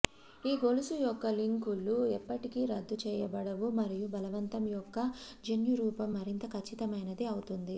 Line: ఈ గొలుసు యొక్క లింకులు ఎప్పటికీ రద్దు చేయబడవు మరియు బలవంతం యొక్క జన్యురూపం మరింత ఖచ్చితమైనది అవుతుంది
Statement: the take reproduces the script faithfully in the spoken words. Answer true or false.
true